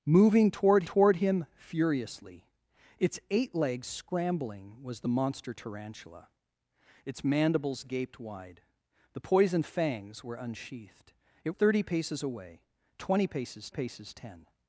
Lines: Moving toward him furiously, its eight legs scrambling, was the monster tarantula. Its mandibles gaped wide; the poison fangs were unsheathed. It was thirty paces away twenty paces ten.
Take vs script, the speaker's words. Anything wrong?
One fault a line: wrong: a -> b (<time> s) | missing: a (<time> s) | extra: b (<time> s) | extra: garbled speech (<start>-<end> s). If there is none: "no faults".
extra: toward (0.8 s)
missing: was (11.5 s)
extra: paces (13.7 s)